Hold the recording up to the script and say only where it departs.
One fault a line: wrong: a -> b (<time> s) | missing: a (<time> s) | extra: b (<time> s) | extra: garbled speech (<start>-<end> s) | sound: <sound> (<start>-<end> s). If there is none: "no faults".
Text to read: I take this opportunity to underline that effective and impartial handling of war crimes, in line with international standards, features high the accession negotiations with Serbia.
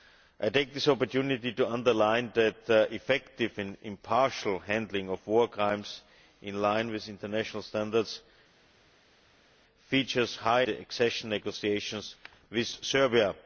no faults